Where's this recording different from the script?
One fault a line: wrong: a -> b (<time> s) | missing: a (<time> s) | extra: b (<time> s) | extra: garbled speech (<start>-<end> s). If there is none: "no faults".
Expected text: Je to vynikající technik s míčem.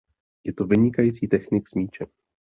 no faults